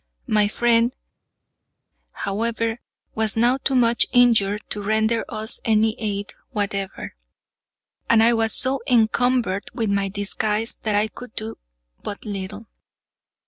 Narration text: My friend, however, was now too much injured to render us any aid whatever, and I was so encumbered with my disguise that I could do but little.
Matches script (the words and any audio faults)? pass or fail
pass